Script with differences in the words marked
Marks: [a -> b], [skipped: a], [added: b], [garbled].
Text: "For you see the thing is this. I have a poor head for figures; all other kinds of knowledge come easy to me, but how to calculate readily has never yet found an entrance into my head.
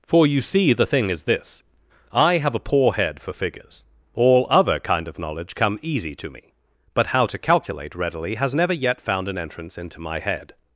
"For you see the thing is this. I have a poor head for figures; all other [kinds -> kind] of knowledge come easy to me, but how to calculate readily has never yet found an entrance into my head.